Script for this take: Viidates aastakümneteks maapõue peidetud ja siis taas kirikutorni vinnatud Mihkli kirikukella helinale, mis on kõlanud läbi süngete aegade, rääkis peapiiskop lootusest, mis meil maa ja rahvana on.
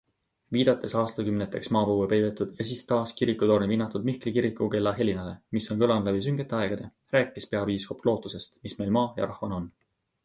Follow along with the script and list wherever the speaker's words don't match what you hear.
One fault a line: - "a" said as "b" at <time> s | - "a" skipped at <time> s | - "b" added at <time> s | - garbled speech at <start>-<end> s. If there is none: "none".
none